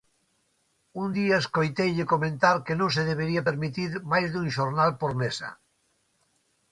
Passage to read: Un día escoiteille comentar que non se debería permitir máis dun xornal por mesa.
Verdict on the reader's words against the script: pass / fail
pass